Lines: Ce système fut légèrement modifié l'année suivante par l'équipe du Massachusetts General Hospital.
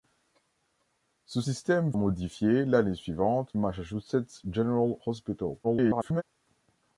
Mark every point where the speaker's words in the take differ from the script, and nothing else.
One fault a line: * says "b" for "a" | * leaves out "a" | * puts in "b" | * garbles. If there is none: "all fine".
* leaves out "fut légèrement"
* leaves out "par l'équipe du"
* garbles